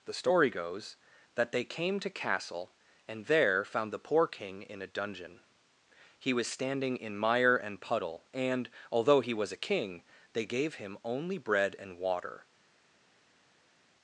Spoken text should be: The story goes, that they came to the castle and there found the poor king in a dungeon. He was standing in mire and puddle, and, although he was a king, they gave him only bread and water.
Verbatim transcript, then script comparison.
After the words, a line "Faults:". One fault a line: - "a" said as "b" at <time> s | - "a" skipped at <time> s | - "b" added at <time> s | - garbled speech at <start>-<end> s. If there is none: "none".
The story goes, that they came to castle and there found the poor king in a dungeon. He was standing in mire and puddle, and, although he was a king, they gave him only bread and water.
Faults:
- "the" skipped at 2.1 s